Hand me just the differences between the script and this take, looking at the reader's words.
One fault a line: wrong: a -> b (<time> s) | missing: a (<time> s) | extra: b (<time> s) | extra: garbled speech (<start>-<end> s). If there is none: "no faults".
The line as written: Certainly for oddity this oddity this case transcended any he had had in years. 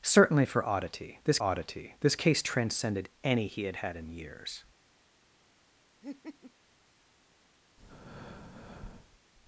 no faults